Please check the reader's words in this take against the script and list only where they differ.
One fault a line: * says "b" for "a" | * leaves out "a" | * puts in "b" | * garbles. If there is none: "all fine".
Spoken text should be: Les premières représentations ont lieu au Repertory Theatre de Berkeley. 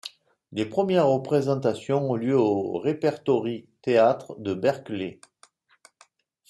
all fine